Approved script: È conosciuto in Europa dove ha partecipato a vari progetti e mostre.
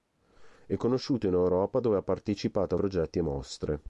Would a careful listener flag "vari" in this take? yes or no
yes